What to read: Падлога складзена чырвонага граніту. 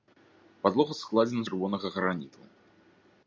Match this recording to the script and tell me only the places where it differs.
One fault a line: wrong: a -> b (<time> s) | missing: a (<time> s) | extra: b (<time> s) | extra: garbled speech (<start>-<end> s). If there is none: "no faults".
no faults